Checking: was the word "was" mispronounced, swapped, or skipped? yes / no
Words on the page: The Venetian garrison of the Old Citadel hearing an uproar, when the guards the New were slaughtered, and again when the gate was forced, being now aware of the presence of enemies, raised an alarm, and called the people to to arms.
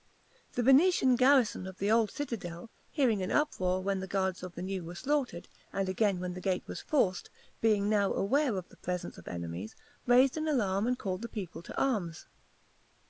no